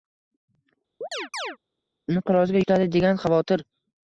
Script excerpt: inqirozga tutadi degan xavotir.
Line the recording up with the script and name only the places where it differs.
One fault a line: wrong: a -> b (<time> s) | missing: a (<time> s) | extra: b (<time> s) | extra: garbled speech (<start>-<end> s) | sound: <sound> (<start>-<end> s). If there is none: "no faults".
sound: chirp (1.0-1.6 s)